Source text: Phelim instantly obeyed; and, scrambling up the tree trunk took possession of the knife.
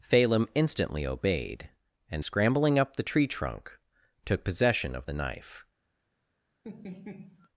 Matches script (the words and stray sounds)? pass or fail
fail